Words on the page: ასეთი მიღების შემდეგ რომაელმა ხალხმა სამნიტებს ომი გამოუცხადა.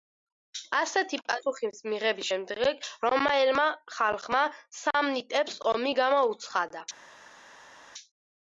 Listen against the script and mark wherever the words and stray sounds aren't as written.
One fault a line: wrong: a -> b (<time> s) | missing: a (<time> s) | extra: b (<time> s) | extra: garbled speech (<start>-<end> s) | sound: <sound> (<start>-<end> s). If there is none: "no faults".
extra: პასუხის (1.2 s)